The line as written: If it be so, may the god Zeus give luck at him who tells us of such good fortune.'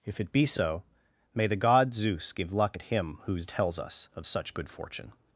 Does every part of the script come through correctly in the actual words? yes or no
yes